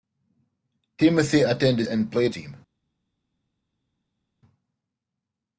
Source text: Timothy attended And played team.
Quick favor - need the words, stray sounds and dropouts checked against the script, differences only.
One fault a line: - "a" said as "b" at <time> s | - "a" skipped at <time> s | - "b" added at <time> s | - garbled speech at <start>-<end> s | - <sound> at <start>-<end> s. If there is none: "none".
none